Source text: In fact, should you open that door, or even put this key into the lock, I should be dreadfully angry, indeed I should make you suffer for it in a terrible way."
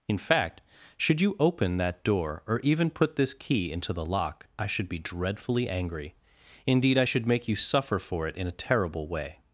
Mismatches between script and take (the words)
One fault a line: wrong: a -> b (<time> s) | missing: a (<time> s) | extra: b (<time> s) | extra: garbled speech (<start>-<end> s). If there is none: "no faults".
no faults